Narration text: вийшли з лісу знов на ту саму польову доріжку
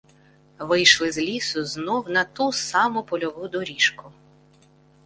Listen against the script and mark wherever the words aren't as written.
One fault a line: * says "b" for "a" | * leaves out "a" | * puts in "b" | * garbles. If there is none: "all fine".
all fine